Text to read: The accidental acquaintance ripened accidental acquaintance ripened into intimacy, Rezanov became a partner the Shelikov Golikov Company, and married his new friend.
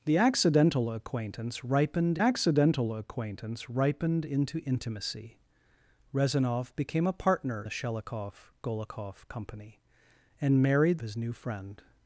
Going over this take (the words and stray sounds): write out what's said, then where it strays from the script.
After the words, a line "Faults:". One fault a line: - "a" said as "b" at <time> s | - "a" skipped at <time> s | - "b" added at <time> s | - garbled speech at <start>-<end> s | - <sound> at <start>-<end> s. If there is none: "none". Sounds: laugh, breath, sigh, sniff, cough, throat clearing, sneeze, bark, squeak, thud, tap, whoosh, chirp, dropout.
The accidental acquaintance ripened accidental acquaintance ripened into intimacy, Rezanov became a partner the Shelikov Golikov Company, and married his new friend.
Faults:
none